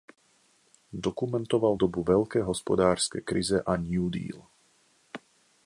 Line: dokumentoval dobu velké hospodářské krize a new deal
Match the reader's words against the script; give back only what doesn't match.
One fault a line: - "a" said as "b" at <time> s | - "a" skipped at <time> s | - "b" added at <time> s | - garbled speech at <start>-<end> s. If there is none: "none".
none